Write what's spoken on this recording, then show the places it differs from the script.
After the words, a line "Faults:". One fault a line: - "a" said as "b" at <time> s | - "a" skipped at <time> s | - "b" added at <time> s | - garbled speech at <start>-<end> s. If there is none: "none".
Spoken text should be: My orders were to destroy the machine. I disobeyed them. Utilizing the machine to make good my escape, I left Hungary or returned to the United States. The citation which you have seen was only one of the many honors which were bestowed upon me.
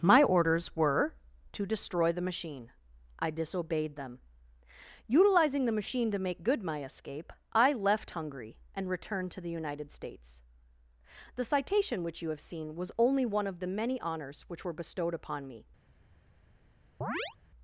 My orders were to destroy the machine. I disobeyed them. Utilizing the machine to make good my escape, I left Hungary and returned to the United States. The citation which you have seen was only one of the many honors which were bestowed upon me.
Faults:
- "or" said as "and" at 8.7 s